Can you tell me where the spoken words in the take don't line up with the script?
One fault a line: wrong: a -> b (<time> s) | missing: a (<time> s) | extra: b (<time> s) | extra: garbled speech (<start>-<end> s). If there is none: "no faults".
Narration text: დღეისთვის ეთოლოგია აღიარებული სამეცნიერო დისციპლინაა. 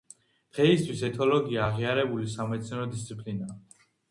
no faults